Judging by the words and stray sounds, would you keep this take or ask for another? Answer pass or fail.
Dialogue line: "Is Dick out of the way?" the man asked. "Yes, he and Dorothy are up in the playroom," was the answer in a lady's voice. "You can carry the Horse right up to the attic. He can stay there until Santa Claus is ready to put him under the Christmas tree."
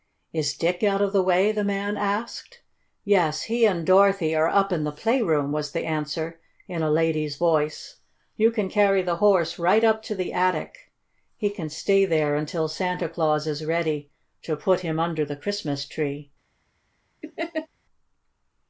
fail